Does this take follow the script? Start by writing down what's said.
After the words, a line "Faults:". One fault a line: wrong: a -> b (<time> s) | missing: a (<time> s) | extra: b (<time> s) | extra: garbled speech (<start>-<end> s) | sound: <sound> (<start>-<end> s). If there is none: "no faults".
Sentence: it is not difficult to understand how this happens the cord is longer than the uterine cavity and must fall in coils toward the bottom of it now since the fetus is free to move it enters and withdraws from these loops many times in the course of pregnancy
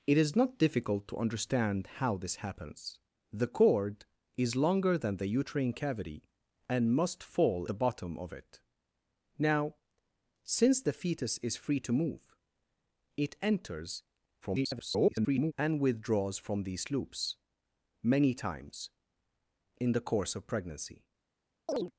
it is not difficult to understand how this happens the cord is longer than the uterine cavity and must fall the bottom of it now since the fetus is free to move it enters [garbled] and withdraws from these loops many times in the course of pregnancy
Faults:
missing: in coils toward (7.7 s)
extra: garbled speech (14.4-15.5 s)
sound: chirp (21.7-21.9 s)